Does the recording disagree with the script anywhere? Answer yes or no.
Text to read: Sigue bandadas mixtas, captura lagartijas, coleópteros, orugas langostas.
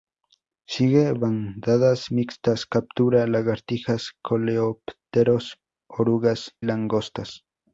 no